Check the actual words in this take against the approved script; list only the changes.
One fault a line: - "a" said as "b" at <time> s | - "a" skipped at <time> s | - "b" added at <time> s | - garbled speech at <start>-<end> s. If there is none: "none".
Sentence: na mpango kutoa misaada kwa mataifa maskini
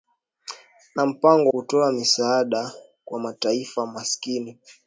none